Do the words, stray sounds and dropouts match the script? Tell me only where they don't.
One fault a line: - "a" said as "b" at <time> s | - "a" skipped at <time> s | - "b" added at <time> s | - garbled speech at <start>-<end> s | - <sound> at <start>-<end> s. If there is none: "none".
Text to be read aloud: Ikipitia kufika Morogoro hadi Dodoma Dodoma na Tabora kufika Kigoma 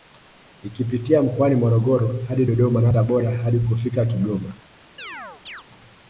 - "kufika" said as "mkoani" at 1.2 s
- "Dodoma" skipped at 2.8 s
- "hadi" added at 3.4 s
- chirp at 5.0-5.6 s